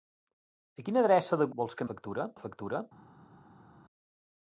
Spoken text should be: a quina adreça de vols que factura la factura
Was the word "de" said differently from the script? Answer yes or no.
no